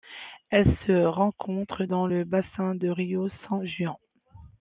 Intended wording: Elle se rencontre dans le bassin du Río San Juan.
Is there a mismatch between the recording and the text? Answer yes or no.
no